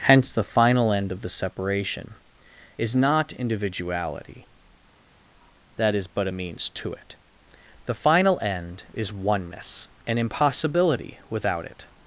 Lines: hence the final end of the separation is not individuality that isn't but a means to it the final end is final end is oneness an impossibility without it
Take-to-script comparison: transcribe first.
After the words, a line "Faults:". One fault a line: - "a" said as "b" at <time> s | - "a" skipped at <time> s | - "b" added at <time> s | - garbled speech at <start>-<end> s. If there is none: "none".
hence the final end of the separation is not individuality that is but a means to it the final end is oneness an impossibility without it
Faults:
- "isn't" said as "is" at 5.9 s
- "final end is" skipped at 9.1 s